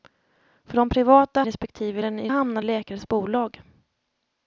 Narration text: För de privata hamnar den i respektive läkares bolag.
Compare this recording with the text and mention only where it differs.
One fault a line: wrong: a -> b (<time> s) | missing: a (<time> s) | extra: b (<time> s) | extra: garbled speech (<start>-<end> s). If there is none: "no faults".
wrong: hamnar -> respektive (1.4 s)
wrong: respektive -> hamnar (2.3 s)